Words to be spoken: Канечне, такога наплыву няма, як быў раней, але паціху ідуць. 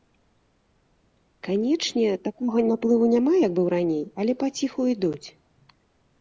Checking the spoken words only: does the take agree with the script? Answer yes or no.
yes